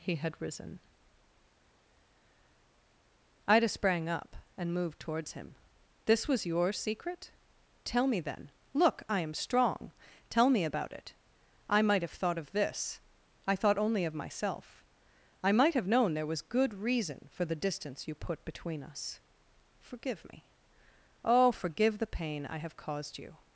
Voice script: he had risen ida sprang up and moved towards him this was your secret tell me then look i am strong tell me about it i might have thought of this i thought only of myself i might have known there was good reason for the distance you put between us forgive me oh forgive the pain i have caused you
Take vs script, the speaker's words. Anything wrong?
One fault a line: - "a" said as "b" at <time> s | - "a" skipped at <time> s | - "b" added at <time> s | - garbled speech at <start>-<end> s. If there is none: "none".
none